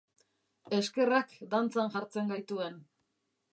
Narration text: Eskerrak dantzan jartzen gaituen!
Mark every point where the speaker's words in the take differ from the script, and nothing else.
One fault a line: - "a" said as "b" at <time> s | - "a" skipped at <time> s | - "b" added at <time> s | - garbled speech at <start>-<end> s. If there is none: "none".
none